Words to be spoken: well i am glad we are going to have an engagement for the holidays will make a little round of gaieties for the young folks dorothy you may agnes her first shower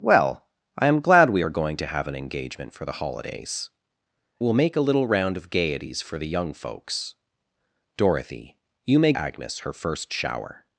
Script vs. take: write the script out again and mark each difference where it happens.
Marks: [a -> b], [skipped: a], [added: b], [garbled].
well i am glad we are going to have an engagement for the holidays will make a little round of gaieties for the young folks dorothy you may agnes her first shower